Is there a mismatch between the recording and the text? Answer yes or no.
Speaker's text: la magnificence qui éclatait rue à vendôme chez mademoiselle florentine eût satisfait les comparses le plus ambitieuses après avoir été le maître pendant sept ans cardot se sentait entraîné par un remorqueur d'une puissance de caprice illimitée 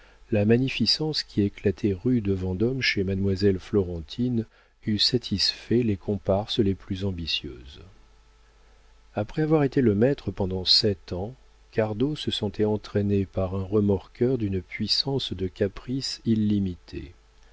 yes